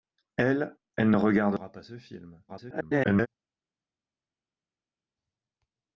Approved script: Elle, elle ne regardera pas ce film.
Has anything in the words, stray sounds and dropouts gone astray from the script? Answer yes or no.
yes